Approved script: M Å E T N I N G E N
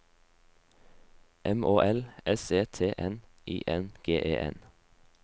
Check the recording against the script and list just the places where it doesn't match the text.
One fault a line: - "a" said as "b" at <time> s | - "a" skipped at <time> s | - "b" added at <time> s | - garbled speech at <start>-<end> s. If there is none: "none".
- "L S" added at 1.8 s